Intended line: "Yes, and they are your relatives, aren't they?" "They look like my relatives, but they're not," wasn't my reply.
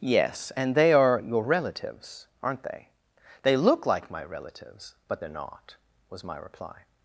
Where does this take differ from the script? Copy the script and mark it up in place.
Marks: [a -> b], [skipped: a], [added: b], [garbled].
"Yes, and they are your relatives, aren't they?" "They look like my relatives, but they're not," [wasn't -> was] my reply.